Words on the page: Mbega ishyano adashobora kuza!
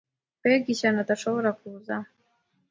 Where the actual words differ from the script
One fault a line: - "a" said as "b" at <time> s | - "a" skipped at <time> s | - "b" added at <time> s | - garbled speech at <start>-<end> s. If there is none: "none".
none